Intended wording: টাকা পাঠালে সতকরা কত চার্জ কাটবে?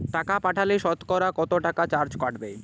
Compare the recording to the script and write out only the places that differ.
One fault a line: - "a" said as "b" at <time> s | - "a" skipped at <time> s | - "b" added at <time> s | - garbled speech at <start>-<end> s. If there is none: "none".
- "টাকা" added at 1.7 s